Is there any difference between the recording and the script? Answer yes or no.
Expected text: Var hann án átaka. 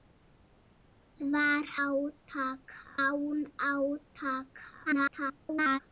yes